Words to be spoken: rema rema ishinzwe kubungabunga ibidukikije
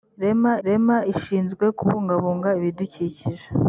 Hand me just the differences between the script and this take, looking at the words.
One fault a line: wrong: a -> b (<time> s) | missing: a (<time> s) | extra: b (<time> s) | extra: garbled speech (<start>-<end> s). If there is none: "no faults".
no faults